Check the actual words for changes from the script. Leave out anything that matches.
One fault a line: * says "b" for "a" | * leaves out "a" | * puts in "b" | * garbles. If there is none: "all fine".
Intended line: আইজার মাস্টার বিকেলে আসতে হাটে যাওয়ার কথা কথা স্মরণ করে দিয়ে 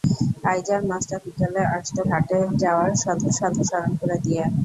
all fine